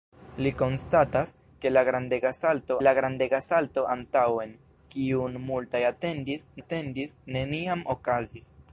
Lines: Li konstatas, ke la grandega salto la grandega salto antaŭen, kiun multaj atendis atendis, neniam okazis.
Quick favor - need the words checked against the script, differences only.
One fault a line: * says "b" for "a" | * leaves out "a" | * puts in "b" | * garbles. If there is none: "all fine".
all fine